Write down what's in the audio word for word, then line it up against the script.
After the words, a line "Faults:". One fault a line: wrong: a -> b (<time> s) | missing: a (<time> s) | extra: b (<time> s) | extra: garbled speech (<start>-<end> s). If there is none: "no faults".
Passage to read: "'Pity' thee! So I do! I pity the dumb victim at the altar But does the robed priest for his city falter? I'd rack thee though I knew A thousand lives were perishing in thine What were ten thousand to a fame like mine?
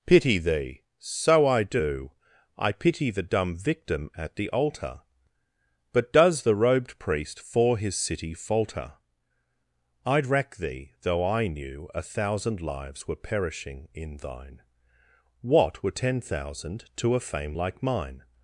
"'Pity' thee! So I do! I pity the dumb victim at the altar But does the robed priest for his city falter? I'd rack thee though I knew A thousand lives were perishing in thine What were ten thousand to a fame like mine?
Faults:
no faults